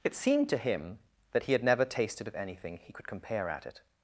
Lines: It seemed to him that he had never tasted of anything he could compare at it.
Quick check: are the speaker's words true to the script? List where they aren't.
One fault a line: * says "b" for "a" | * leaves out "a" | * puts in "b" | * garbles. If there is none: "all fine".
all fine